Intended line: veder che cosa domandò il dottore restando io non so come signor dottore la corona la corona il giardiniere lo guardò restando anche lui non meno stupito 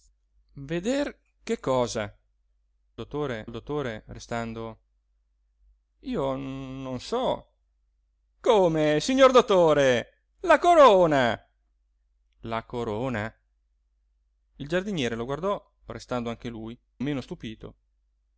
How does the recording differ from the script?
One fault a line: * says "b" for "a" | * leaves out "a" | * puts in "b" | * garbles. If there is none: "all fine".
* says "dottore" for "domandò"
* leaves out "non"